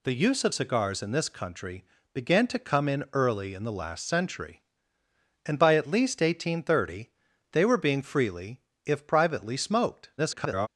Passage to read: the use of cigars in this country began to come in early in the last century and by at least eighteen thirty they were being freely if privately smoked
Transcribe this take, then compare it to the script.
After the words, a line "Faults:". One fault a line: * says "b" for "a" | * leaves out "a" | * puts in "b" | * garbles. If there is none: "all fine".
the use of cigars in this country began to come in early in the last century and by at least eighteen thirty they were being freely if privately smoked [garbled]
Faults:
* garbles